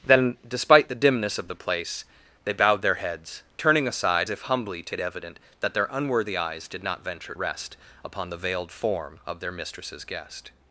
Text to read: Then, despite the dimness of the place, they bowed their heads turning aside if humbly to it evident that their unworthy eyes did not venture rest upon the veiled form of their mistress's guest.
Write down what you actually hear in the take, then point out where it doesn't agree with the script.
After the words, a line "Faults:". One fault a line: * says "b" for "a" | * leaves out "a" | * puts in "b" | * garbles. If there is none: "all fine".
Then, despite the dimness of the place, they bowed their heads turning aside if humbly to it evident that their unworthy eyes did not venture rest upon the veiled form of their mistress's guest.
Faults:
all fine